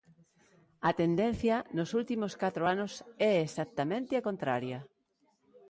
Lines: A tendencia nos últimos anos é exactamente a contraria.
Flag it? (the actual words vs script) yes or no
yes